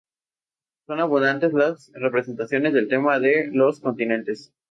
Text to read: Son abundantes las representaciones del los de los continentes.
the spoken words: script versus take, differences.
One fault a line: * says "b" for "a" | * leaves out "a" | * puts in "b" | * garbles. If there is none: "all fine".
* says "tema" for "los"